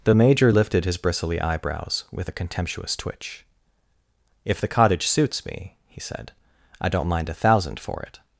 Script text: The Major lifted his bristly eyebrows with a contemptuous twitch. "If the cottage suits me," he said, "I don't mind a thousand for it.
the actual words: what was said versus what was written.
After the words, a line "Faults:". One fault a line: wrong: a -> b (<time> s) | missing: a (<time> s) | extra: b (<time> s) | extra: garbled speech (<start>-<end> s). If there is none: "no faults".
The Major lifted his bristly eyebrows with a contemptuous twitch. "If the cottage suits me," he said, "I don't mind a thousand for it.
Faults:
no faults